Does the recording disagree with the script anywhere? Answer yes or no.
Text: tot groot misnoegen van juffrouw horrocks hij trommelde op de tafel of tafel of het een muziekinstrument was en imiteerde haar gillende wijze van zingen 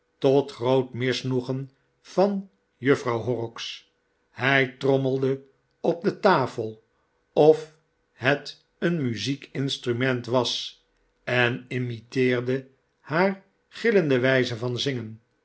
yes